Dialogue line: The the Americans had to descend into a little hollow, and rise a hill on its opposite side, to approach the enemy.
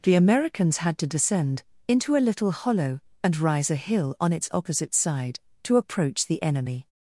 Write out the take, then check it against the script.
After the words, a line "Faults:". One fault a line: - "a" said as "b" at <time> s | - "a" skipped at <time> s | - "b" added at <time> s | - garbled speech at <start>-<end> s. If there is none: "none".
The Americans had to descend into a little hollow, and rise a hill on its opposite side, to approach the enemy.
Faults:
- "the" skipped at 0.1 s